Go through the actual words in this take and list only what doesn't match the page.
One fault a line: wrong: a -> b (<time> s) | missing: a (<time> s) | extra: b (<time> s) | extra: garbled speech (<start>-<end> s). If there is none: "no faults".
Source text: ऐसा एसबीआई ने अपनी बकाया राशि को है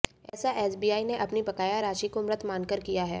extra: मृत मानकर किया (2.2 s)